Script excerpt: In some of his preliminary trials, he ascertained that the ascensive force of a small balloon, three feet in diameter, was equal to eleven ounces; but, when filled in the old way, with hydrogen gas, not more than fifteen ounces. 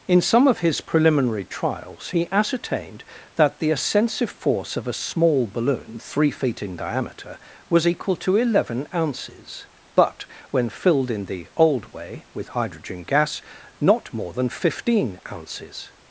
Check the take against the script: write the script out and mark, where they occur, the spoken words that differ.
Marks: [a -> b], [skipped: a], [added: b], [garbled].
In some of his preliminary trials, he ascertained that the ascensive force of a small balloon, three feet in diameter, was equal to eleven ounces; but, when filled in the old way, with hydrogen gas, not more than fifteen ounces.